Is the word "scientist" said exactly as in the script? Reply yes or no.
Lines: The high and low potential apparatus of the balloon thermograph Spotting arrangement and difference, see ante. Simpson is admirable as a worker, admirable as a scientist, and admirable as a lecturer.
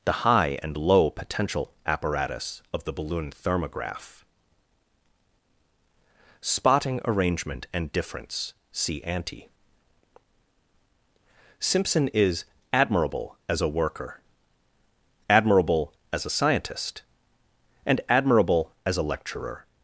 yes